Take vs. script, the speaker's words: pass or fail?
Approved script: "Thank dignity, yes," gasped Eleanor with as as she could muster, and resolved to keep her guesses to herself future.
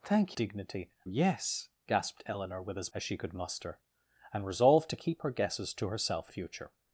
pass